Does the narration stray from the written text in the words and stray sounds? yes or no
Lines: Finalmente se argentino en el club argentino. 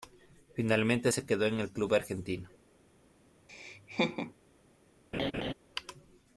yes